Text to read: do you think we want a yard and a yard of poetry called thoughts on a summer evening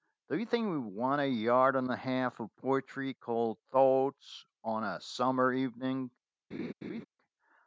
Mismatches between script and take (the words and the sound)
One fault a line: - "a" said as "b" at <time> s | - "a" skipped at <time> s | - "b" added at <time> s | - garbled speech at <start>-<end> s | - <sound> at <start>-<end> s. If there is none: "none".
- "yard" said as "half" at 1.9 s
- laugh at 6.5-7.1 s